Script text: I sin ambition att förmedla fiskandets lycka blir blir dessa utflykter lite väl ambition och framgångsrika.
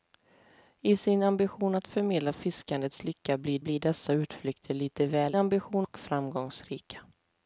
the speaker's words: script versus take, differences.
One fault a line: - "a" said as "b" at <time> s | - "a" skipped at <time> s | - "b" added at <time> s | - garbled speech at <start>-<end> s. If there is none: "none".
none